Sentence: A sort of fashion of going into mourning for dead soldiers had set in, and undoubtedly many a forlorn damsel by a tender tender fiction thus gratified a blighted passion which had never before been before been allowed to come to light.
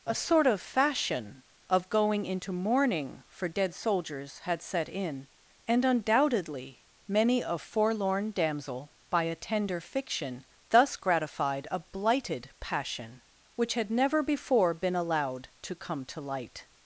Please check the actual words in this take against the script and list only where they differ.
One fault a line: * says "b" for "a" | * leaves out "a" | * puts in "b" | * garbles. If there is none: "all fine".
* leaves out "tender"
* leaves out "before been"